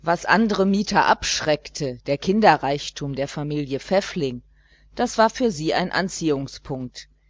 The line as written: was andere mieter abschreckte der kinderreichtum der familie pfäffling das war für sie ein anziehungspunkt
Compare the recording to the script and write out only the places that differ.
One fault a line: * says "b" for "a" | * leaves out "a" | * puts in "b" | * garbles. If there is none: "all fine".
all fine